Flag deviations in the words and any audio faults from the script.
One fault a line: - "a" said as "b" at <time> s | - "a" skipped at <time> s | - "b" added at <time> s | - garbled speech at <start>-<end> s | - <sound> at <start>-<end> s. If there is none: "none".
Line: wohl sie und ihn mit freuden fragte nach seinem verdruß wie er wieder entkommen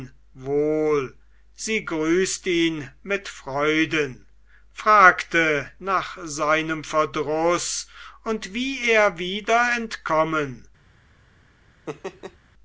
- "und" said as "grüßt" at 1.9 s
- "und" added at 8.2 s
- laugh at 11.9-12.4 s